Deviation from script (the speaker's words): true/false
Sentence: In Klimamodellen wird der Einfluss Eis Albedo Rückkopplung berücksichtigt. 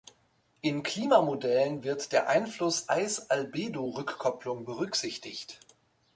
false